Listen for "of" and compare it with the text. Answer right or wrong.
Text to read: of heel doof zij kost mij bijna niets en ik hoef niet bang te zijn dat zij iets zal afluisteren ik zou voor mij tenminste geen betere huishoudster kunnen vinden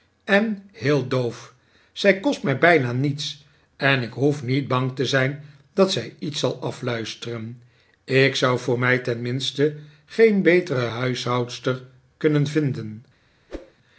wrong